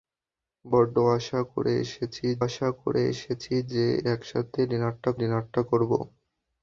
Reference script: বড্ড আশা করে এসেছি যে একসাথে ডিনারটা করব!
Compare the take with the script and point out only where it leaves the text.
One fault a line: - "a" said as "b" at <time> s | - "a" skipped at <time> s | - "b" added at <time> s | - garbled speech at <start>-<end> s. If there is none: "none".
- "আশা করে এসেছি" added at 2.4 s
- "ডিনারটা" added at 5.2 s